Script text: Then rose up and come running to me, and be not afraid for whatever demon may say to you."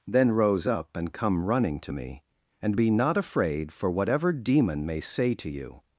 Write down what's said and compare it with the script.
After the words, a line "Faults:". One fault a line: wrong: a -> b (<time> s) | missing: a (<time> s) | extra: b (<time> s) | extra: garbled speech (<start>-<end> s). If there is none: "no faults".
Then rose up and come running to me, and be not afraid for whatever demon may say to you."
Faults:
no faults